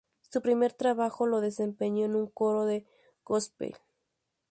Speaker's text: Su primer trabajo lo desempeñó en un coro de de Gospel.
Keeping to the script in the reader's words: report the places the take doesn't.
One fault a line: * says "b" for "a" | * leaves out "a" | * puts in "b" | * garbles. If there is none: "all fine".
* leaves out "de"